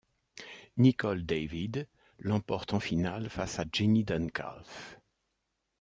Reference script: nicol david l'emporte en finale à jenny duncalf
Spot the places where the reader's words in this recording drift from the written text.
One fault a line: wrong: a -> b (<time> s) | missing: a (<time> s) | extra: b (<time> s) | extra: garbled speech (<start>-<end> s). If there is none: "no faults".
extra: face (3.3 s)